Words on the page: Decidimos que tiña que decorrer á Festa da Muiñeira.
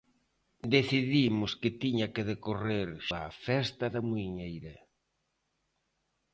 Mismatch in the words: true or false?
false